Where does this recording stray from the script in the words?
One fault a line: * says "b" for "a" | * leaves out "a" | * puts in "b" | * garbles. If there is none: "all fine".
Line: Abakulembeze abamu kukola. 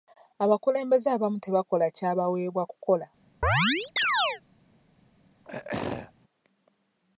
* puts in "tebakola kyabaweebwa"